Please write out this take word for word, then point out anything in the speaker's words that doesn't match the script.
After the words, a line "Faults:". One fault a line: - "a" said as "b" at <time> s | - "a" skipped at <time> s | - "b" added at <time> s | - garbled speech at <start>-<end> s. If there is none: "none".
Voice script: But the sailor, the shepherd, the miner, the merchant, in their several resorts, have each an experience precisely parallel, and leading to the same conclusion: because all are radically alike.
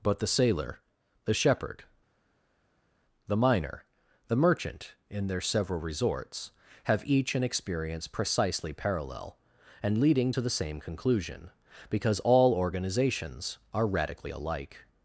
But the sailor, the shepherd, the miner, the merchant, in their several resorts, have each an experience precisely parallel, and leading to the same conclusion: because all organizations are radically alike.
Faults:
- "organizations" added at 12.5 s